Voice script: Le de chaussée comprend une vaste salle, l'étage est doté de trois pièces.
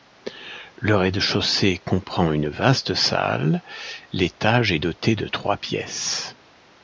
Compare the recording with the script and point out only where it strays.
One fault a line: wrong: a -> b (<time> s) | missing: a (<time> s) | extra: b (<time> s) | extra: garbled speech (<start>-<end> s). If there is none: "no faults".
extra: rez (0.9 s)